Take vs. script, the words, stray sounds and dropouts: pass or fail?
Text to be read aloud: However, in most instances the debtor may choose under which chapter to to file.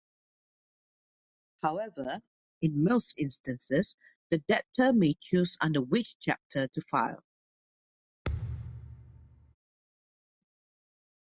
fail